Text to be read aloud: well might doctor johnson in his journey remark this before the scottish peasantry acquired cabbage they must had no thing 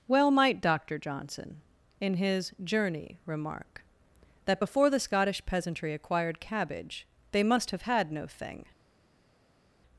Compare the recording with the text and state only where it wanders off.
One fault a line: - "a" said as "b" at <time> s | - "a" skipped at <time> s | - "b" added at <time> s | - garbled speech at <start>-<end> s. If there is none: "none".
- "this" said as "that" at 4.5 s
- "have" added at 7.7 s